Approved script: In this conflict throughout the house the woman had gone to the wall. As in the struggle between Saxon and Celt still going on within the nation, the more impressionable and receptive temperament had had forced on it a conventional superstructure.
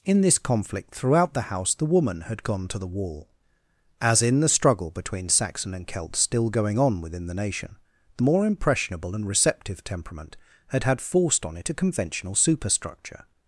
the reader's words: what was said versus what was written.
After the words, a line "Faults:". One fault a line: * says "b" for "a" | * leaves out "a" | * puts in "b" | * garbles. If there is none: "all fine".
In this conflict throughout the house the woman had gone to the wall. As in the struggle between Saxon and Celt still going on within the nation, the more impressionable and receptive temperament had had forced on it a conventional superstructure.
Faults:
all fine